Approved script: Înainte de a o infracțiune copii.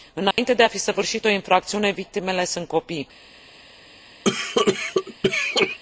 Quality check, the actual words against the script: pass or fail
fail